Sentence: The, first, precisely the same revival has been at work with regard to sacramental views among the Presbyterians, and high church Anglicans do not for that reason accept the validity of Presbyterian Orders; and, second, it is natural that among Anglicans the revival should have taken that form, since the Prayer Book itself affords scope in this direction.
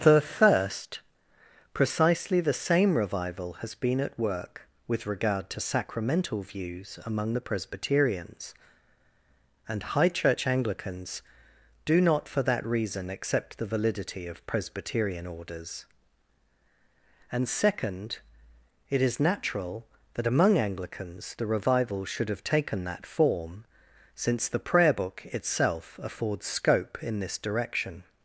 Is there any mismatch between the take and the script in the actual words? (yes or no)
no